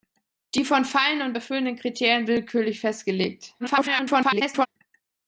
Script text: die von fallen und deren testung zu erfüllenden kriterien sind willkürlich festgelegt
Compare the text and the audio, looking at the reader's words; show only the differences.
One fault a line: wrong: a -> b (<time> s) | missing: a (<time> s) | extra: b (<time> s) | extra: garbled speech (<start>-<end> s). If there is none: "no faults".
missing: deren testung zu (1.4 s)
missing: sind (2.3 s)
extra: garbled speech (3.6-4.7 s)